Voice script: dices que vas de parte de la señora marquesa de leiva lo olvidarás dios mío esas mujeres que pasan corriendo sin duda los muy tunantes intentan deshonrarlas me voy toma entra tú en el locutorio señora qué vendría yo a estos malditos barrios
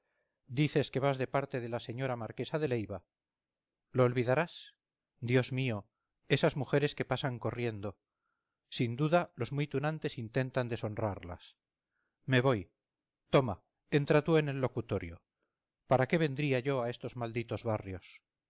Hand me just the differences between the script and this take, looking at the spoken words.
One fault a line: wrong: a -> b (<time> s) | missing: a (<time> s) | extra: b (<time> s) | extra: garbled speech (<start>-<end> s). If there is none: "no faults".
wrong: señora -> para (15.9 s)